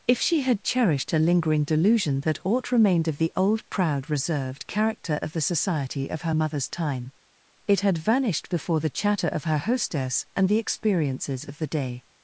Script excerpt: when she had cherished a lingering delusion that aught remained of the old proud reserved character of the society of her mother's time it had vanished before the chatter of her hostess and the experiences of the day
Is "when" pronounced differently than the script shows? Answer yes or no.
yes